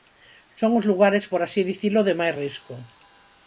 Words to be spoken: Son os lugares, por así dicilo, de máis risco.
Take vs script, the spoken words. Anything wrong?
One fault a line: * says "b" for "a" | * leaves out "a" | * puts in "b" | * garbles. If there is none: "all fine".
all fine